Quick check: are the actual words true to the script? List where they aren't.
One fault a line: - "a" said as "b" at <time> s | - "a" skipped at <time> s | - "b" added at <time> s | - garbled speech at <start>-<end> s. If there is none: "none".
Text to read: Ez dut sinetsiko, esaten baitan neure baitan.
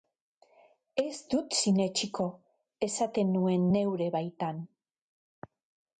- "baitan" said as "nuen" at 3.4 s